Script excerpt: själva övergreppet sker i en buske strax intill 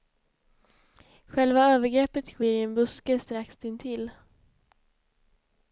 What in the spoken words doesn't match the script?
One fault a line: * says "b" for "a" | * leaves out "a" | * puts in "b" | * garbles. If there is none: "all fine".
all fine